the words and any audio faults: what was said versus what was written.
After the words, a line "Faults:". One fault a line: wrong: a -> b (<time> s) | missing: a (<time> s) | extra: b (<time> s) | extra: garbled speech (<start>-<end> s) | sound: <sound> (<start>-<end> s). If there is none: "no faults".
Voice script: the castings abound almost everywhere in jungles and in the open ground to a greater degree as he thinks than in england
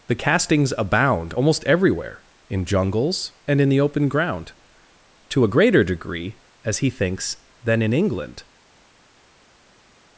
the castings abound almost everywhere in jungles and in the open ground to a greater degree as he thinks than in england
Faults:
no faults